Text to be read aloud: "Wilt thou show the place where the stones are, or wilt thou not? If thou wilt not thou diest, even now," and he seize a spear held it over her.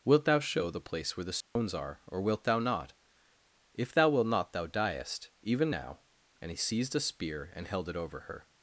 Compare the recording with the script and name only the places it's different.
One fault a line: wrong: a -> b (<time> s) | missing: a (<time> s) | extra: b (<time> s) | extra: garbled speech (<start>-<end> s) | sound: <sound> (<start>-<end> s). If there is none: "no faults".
sound: dropout (1.4-1.6 s)
wrong: seize -> seized (6.6 s)
extra: and (7.5 s)